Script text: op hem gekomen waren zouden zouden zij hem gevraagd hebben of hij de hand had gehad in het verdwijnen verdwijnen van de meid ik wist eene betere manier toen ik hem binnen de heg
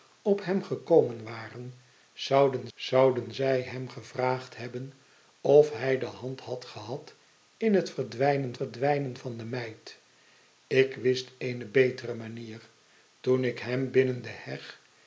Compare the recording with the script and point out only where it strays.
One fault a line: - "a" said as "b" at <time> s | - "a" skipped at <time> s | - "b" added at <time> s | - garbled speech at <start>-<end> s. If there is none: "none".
none